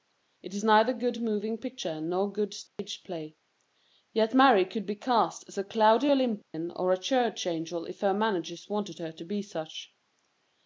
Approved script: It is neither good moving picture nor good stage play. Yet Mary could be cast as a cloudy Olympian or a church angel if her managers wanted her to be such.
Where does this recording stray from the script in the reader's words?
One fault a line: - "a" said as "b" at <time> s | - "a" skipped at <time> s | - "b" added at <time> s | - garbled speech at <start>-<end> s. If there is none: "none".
none